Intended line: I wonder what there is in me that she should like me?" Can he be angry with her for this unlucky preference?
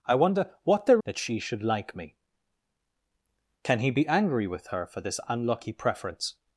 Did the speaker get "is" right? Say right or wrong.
wrong